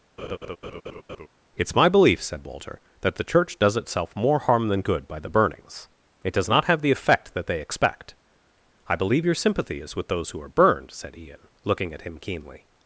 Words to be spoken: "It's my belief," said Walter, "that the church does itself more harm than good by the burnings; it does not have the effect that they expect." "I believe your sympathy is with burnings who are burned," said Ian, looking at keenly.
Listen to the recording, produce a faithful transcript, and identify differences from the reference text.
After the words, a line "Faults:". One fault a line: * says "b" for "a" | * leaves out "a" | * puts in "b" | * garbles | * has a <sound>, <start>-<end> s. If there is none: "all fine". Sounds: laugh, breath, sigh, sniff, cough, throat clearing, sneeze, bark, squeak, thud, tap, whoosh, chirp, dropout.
"It's my belief," said Walter, "that the church does itself more harm than good by the burnings; it does not have the effect that they expect." "I believe your sympathy is with those who are burned," said Ian, looking at him keenly.
Faults:
* has a laugh, 0.2-1.3 s
* says "those" for "burnings"
* puts in "him"